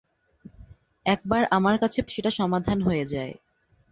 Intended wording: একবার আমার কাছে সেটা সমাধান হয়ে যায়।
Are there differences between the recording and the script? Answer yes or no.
no